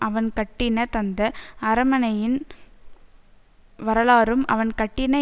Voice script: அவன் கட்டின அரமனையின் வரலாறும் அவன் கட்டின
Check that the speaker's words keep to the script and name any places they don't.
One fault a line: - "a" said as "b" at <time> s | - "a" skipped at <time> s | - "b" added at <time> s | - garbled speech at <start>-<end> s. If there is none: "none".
- "தந்த" added at 0.9 s